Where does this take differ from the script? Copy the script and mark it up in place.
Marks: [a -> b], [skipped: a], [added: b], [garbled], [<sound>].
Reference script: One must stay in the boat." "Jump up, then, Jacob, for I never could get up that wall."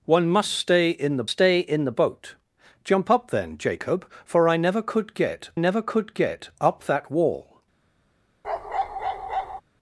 One must stay in the [added: stay in the] boat." "Jump up, then, Jacob, for I never could get [added: never could get] up that wall." [bark]